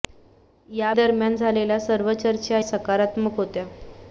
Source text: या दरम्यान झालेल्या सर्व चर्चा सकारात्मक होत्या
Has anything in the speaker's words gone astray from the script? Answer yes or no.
no